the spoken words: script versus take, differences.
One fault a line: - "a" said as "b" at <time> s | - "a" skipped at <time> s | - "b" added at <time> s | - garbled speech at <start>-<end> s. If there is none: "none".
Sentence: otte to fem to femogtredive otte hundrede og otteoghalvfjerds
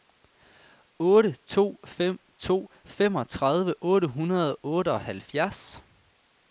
none